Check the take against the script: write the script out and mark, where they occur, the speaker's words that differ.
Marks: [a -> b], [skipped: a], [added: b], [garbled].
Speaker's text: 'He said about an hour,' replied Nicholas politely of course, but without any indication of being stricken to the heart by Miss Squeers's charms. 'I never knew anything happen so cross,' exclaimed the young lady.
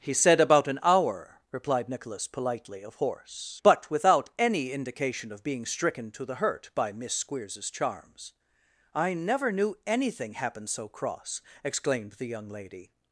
'He said about an hour,' replied Nicholas politely of [course, -> horse] but without any indication of being stricken to the [heart -> hurt] by Miss Squeers's charms. 'I never knew anything happen so cross,' exclaimed the young lady.